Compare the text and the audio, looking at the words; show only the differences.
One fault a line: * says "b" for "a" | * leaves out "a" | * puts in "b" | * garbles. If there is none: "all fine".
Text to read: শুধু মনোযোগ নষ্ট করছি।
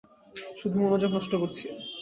all fine